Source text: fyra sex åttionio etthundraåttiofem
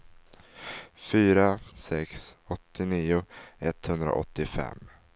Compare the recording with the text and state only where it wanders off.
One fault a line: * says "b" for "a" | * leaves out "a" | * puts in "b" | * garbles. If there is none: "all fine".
all fine